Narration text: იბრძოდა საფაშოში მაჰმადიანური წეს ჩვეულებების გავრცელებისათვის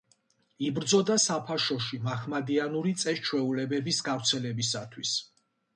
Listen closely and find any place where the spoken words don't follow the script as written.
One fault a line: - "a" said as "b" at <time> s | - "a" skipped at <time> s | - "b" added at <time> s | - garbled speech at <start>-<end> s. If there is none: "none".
none